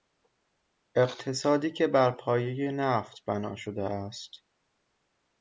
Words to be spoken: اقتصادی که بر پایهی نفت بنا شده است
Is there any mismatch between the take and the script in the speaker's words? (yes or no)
no